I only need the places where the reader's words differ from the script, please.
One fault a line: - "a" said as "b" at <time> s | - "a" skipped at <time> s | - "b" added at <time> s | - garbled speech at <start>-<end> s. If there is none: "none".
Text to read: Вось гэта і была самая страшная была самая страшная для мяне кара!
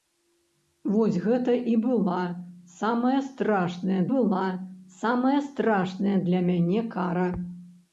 none